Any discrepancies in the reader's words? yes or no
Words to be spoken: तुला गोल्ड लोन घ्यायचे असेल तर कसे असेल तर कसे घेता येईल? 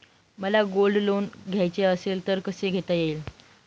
yes